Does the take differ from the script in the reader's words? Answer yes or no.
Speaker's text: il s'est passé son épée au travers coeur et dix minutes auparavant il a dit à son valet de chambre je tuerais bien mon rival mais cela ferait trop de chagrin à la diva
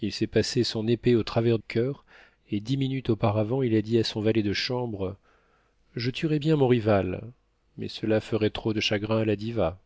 no